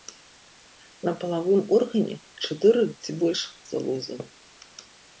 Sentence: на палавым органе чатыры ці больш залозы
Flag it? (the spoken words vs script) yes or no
no